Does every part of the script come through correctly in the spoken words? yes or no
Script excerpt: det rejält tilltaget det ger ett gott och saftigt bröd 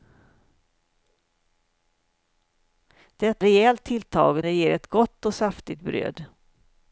yes